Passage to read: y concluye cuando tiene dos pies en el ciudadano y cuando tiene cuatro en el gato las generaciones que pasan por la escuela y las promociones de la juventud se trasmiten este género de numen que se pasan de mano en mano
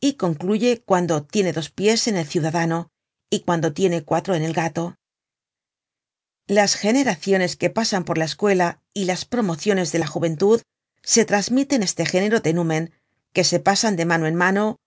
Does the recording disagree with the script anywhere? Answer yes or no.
no